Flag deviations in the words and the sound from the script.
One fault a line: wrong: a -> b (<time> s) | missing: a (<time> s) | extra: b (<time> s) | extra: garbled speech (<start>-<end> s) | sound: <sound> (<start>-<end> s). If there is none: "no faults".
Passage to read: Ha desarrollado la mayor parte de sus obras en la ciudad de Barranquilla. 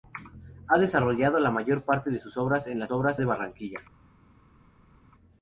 wrong: ciudad -> obras (2.9 s)